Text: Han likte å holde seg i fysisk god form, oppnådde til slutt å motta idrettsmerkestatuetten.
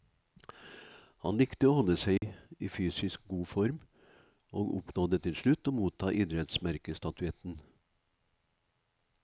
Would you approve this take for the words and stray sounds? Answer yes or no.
no